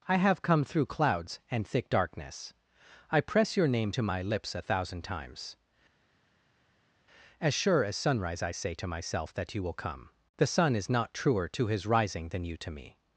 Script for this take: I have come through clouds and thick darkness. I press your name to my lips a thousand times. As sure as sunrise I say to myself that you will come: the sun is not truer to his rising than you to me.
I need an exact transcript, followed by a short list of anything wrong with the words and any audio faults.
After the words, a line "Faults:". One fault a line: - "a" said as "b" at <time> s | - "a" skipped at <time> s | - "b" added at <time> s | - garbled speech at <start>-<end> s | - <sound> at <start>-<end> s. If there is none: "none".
I have come through clouds and thick darkness. I press your name to my lips a thousand times. As sure as sunrise I say to myself that you will come: the sun is not truer to his rising than you to me.
Faults:
none